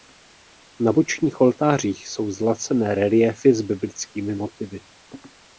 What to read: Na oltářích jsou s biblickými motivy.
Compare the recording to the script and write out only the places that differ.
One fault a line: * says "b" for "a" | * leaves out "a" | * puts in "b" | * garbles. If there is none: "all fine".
* puts in "bočních"
* puts in "zlacené reliéfy"